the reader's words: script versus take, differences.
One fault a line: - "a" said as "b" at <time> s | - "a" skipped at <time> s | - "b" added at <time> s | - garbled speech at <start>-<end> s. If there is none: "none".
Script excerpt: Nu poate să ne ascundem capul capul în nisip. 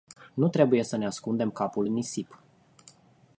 - "poate" said as "trebuie" at 0.5 s
- "capul" skipped at 1.9 s